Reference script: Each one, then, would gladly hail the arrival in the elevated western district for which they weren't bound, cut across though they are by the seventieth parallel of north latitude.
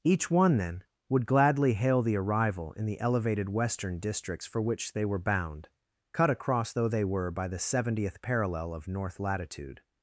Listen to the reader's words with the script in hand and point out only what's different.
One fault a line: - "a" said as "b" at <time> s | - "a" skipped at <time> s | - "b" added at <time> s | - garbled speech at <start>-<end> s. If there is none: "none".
- "district" said as "districts" at 4.0 s
- "weren't" said as "were" at 5.0 s
- "are" said as "were" at 7.0 s